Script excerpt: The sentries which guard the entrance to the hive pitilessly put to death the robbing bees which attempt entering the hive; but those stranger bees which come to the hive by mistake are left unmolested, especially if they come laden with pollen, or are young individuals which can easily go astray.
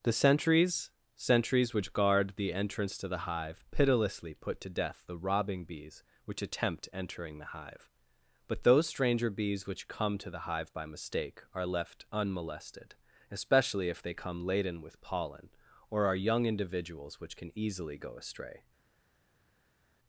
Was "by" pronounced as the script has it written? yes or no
yes